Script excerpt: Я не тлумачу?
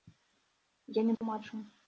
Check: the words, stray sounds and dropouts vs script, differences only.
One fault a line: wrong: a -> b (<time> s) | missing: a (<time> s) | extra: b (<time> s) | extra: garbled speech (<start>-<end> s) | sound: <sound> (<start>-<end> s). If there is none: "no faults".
sound: dropout (1.2-1.2 s)